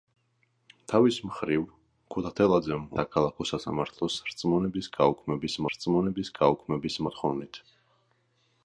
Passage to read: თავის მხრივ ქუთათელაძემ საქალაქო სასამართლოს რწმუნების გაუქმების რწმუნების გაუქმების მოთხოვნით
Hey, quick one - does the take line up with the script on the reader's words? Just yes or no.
yes